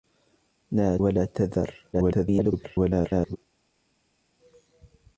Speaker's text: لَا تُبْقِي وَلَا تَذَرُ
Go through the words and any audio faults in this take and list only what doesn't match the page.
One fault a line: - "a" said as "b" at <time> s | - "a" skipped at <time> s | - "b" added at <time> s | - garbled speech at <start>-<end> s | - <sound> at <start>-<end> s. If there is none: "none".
- "تُبْقِي" skipped at 1.0 s
- garbled speech at 1.9-3.4 s